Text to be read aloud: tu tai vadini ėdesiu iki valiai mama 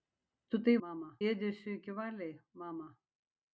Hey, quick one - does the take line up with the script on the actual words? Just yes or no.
no